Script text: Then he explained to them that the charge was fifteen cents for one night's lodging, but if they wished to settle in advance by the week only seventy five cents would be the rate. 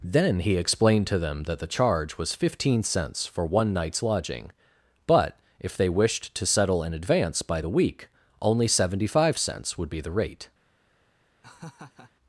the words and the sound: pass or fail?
fail